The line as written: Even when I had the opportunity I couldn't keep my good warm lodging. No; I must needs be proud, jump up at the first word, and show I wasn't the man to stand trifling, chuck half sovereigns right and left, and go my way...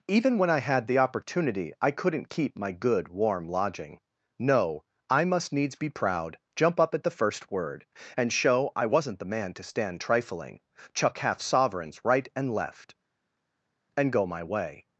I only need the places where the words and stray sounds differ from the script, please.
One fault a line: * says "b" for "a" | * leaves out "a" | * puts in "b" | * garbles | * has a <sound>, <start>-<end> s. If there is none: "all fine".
all fine